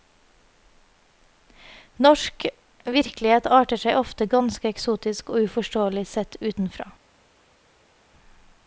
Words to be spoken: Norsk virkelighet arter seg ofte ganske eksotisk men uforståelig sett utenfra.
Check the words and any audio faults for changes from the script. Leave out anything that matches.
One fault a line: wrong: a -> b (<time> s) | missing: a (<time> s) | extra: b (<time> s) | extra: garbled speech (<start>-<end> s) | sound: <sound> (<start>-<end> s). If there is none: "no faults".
wrong: men -> og (5.3 s)